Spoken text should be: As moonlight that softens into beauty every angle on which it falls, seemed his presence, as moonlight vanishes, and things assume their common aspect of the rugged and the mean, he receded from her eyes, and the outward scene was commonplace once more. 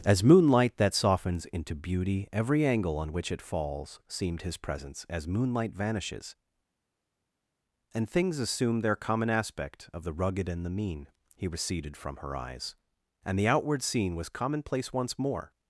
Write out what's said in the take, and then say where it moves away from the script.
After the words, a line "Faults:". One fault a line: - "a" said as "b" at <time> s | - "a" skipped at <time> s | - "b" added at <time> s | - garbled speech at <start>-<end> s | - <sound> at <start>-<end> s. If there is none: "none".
As moonlight that softens into beauty every angle on which it falls, seemed his presence, as moonlight vanishes, and things assume their common aspect of the rugged and the mean, he receded from her eyes, and the outward scene was commonplace once more.
Faults:
none